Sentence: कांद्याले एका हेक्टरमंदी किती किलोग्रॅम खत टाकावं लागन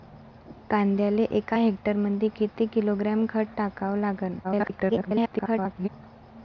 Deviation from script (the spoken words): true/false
true